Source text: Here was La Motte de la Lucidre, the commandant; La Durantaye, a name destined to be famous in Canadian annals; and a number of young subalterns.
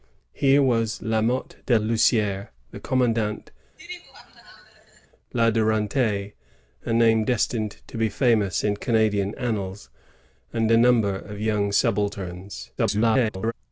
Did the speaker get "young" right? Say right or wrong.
right